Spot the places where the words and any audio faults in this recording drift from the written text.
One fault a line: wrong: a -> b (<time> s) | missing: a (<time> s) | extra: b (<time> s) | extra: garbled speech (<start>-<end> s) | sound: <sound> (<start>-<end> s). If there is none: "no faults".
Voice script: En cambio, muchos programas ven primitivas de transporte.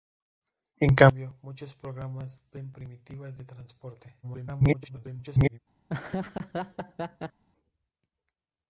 extra: garbled speech (4.2-5.6 s)
sound: laugh (5.9-7.4 s)